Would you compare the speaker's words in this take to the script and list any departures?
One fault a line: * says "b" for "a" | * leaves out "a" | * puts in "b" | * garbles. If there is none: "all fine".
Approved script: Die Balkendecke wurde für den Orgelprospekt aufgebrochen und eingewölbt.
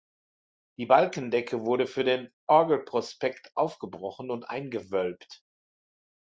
all fine